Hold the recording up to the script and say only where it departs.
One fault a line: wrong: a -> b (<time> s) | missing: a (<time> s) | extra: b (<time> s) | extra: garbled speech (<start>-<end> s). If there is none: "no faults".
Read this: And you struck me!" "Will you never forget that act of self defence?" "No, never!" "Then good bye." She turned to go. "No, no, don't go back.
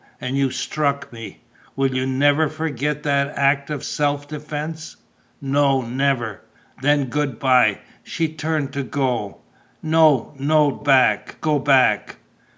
wrong: don't -> back (10.8 s)